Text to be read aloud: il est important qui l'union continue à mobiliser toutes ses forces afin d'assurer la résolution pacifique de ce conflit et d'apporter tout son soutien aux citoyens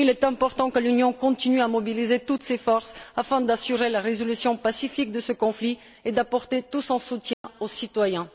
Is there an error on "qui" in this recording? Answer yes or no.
yes